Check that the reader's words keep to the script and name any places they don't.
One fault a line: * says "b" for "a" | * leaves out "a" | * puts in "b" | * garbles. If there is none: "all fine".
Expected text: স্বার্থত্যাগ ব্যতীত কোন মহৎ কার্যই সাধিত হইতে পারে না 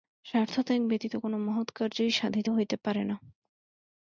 all fine